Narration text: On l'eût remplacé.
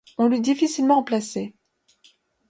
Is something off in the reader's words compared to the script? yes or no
yes